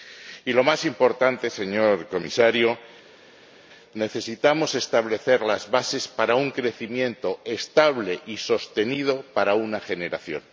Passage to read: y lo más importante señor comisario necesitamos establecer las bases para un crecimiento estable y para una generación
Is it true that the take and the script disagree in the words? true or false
true